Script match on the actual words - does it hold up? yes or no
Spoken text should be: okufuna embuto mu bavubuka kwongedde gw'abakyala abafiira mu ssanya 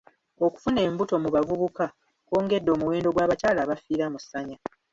no